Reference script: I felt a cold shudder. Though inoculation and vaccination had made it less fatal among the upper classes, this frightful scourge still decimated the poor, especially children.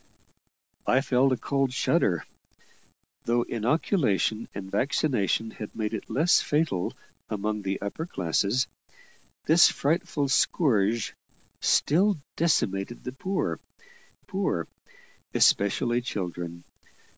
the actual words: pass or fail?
fail